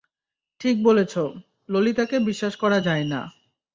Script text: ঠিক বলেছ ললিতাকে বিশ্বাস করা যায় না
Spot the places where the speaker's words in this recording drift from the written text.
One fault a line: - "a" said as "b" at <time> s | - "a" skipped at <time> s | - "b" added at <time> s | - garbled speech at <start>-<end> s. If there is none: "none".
none